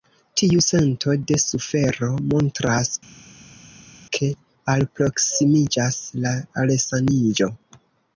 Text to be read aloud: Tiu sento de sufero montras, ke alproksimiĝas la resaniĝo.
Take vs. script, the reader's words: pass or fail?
pass